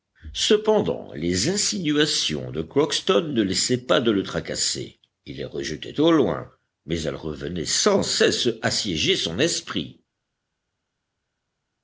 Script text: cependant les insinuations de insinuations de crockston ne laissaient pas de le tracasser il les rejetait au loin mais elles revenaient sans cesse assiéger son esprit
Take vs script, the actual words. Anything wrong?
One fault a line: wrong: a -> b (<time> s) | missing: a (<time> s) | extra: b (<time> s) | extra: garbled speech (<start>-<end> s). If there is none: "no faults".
missing: insinuations de (2.6 s)